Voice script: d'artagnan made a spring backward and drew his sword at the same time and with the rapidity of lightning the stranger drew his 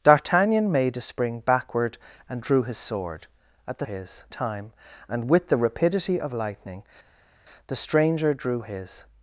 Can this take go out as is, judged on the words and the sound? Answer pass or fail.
fail